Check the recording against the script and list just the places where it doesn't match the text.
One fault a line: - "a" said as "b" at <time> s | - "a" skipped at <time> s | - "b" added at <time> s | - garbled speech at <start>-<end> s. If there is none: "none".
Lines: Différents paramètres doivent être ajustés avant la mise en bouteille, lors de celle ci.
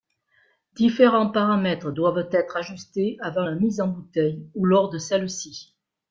- "ou" added at 4.5 s